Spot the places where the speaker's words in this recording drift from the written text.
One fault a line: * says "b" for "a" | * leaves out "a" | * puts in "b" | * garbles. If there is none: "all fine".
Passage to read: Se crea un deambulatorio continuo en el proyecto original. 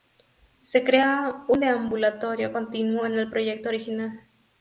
all fine